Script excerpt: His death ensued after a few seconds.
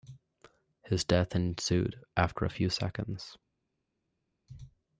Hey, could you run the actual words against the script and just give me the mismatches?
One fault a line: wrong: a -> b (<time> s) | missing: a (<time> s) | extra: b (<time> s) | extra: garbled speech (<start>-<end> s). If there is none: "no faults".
no faults